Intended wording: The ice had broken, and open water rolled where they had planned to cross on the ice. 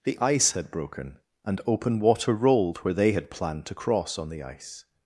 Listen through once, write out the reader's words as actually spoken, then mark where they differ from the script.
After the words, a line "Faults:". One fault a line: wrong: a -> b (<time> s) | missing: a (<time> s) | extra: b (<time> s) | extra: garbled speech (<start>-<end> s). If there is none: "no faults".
The ice had broken, and open water rolled where they had planned to cross on the ice.
Faults:
no faults